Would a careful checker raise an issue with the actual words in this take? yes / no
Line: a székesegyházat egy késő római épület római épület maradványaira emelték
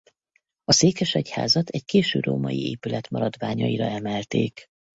yes